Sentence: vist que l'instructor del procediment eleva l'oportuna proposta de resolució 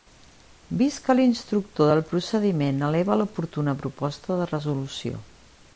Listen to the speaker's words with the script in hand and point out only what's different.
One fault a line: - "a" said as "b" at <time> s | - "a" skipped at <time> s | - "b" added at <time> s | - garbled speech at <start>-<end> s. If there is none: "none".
none